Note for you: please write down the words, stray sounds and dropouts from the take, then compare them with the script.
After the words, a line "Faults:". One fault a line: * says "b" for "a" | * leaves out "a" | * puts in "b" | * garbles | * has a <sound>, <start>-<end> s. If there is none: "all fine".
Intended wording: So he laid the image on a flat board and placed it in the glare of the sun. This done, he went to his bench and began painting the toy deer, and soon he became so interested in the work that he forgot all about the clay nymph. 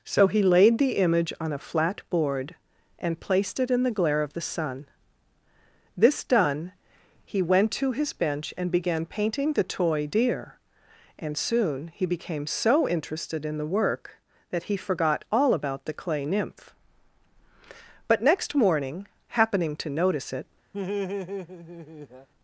So he laid the image on a flat board and placed it in the glare of the sun. This done, he went to his bench and began painting the toy deer, and soon he became so interested in the work that he forgot all about the clay nymph. But next morning, happening to notice it
Faults:
* puts in "But next morning happening to notice it"
* has a laugh, 20.7-22.3 s